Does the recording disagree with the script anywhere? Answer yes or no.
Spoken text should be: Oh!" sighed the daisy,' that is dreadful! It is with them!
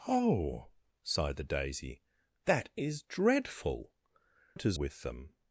no